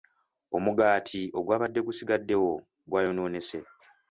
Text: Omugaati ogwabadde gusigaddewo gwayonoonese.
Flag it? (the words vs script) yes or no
no